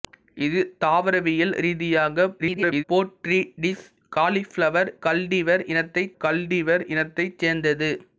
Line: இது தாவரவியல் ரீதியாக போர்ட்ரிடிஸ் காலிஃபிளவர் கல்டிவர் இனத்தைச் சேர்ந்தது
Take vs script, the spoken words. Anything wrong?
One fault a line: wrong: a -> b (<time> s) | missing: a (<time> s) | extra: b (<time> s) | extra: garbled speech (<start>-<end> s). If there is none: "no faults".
extra: garbled speech (2.4-2.8 s)
extra: கல்டிவர் இனத்தைச் (6.2 s)